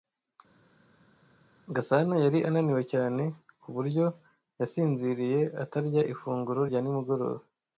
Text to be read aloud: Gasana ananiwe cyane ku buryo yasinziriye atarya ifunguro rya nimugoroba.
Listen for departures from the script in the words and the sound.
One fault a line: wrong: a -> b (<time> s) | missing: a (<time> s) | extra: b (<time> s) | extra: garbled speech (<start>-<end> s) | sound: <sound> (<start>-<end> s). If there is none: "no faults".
extra: yari (2.2 s)